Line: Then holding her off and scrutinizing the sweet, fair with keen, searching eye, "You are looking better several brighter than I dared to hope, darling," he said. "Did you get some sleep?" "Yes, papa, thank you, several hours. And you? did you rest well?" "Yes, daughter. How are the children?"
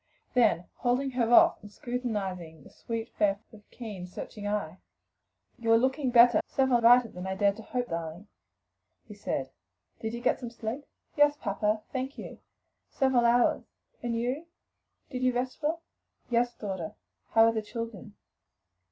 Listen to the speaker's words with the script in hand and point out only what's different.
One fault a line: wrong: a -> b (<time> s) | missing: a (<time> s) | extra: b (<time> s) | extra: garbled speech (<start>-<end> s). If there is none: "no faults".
no faults